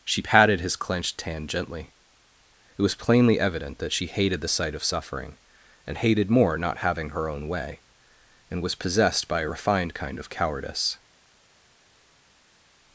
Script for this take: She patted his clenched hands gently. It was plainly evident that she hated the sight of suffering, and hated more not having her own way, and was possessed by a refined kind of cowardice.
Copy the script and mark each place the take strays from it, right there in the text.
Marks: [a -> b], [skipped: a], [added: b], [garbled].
She patted his clenched [hands -> hand] gently. It was plainly evident that she hated the sight of suffering, and hated more not having her own way, and was possessed by a refined kind of cowardice.